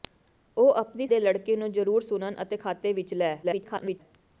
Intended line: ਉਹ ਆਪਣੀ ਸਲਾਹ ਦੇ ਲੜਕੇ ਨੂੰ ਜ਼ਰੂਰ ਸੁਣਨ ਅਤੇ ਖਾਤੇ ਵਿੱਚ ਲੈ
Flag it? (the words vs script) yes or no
yes